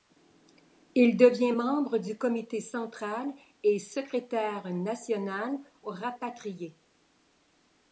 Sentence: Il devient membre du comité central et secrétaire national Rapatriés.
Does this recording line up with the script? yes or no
yes